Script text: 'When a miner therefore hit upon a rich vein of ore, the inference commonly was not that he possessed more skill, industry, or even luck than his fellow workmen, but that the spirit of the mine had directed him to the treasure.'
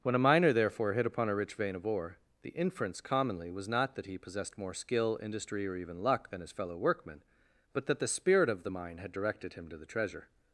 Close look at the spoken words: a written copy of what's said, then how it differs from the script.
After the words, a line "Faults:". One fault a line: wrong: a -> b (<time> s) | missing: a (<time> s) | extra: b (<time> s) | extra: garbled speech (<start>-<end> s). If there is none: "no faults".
'When a miner therefore hit upon a rich vein of ore, the inference commonly was not that he possessed more skill, industry, or even luck than his fellow workmen, but that the spirit of the mine had directed him to the treasure.'
Faults:
no faults